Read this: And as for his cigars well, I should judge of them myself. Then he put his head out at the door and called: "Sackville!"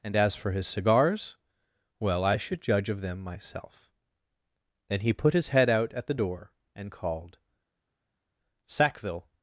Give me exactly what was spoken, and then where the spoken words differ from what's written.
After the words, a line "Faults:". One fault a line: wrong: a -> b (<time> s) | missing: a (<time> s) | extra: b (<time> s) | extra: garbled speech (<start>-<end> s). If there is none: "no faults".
And as for his cigars well, I should judge of them myself. Then he put his head out at the door and called: "Sackville!"
Faults:
no faults